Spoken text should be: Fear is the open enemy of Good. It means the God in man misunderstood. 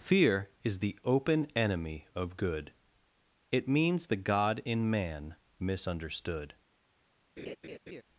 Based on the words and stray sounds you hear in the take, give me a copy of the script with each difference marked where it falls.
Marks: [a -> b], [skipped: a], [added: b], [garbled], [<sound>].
Fear is the open enemy of Good. It means the God in man misunderstood. [laugh]